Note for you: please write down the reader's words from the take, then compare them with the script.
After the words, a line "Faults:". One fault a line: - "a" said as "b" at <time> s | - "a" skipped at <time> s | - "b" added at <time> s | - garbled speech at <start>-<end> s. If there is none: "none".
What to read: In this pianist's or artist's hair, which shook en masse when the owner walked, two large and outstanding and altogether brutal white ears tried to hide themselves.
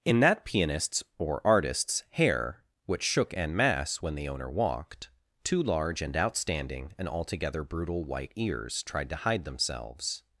In that pianist's or artist's hair, which shook en masse when the owner walked, two large and outstanding and altogether brutal white ears tried to hide themselves.
Faults:
- "this" said as "that" at 0.2 s